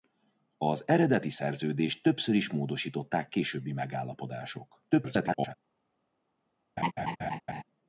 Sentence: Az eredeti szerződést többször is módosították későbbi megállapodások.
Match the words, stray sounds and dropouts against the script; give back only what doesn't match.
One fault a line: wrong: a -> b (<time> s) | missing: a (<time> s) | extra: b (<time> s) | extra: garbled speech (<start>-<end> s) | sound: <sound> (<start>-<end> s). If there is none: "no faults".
extra: garbled speech (4.9-5.5 s)
sound: laugh (6.8-7.6 s)